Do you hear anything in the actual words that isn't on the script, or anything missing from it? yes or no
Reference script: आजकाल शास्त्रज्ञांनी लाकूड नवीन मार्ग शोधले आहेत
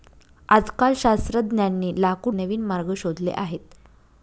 no